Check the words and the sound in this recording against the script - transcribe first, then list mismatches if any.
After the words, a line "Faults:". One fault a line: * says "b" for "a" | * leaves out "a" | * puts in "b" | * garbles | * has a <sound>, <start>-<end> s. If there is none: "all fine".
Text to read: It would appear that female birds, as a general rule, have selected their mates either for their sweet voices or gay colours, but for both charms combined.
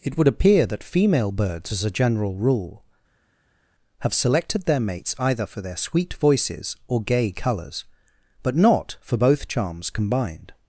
It would appear that female birds, as a general rule, have selected their mates either for their sweet voices or gay colours, but not for both charms combined.
Faults:
* puts in "not"